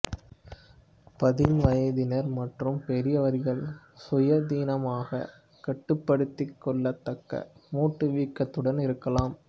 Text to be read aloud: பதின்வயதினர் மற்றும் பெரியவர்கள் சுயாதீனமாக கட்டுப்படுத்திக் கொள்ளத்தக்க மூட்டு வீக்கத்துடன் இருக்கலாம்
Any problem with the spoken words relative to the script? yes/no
no